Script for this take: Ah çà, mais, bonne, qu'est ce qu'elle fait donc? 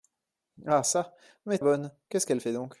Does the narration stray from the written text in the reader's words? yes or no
no